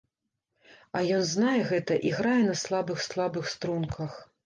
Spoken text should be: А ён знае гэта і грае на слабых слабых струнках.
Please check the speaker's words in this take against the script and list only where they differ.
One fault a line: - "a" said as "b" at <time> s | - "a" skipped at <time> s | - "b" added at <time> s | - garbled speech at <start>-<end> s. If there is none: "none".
none